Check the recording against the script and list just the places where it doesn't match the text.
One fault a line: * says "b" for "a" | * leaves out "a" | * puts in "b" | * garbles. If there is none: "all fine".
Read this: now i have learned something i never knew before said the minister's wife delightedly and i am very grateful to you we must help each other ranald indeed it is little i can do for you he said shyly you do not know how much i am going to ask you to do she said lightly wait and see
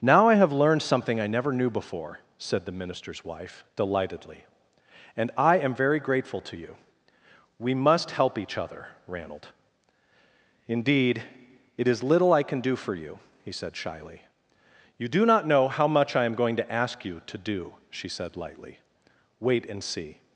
all fine